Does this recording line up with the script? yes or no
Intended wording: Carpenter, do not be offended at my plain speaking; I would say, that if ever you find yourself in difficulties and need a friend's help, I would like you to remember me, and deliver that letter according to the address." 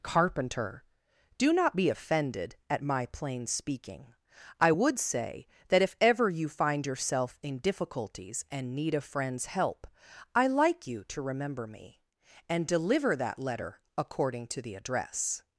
no